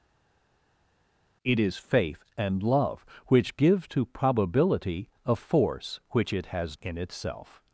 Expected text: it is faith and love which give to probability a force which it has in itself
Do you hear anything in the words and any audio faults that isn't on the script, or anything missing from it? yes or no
no